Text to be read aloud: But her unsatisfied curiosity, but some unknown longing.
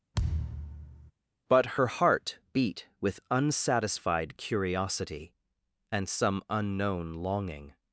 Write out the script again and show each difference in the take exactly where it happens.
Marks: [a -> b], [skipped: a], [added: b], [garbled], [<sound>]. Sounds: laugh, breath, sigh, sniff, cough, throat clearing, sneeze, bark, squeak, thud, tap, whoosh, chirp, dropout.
[thud] But her [added: heart beat with] unsatisfied curiosity, [but -> and] some unknown longing.